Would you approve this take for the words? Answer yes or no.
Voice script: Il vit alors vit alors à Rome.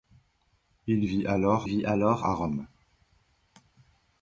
yes